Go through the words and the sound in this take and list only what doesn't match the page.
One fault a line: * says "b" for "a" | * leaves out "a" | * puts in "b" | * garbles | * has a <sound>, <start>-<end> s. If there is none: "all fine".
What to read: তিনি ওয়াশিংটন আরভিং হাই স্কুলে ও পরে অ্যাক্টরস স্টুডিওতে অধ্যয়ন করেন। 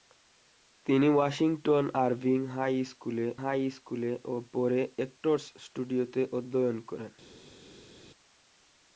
* puts in "হাই স্কুলে"